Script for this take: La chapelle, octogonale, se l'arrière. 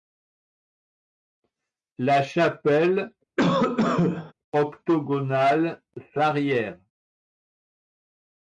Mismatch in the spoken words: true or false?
false